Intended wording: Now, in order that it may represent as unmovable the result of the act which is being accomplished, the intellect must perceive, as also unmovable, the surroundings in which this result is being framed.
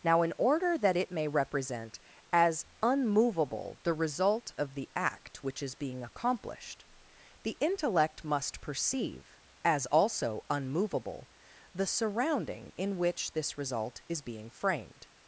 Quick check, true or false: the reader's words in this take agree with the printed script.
false